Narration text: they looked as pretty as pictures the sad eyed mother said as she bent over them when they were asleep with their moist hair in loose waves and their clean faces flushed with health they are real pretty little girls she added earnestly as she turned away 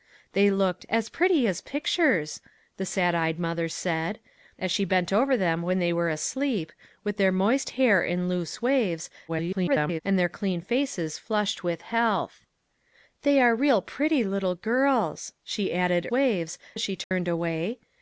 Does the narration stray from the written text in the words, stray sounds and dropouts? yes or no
yes